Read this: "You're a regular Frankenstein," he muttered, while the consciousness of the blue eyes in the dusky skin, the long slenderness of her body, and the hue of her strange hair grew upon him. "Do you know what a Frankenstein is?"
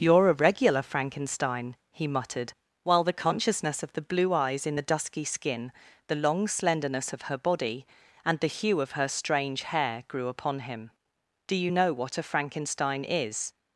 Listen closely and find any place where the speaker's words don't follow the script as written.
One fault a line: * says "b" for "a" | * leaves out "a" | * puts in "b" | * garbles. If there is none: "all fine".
all fine